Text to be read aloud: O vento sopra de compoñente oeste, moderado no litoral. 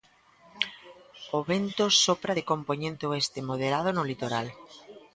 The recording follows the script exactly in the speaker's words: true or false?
true